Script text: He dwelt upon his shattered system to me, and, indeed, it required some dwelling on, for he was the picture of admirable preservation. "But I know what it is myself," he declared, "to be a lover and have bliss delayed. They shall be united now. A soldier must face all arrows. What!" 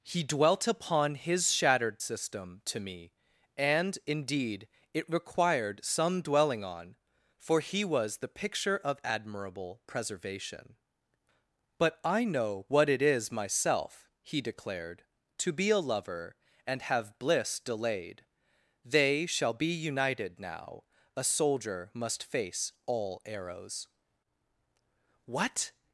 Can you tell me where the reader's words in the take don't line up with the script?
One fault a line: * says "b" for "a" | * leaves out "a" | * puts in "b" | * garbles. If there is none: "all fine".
all fine